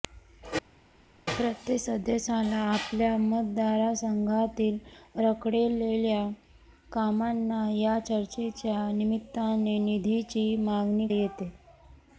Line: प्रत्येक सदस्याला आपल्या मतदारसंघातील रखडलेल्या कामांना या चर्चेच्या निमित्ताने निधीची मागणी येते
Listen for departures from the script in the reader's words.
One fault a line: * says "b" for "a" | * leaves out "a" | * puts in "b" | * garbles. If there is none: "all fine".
all fine